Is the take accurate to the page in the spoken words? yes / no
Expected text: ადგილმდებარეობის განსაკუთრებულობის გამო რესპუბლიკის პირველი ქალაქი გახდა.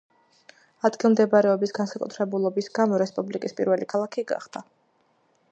yes